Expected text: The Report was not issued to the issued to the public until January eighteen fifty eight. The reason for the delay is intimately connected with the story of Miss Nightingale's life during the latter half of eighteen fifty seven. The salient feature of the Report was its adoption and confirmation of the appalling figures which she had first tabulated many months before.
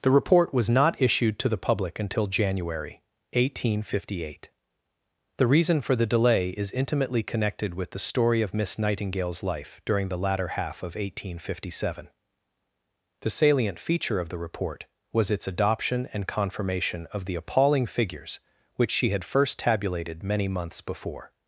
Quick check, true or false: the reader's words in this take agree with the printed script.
false